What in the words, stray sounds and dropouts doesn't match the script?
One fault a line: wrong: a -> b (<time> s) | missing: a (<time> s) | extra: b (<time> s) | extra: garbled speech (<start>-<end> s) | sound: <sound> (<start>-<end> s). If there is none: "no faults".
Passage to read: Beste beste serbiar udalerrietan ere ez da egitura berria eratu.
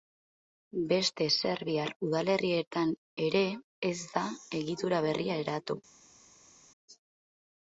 missing: beste (1.2 s)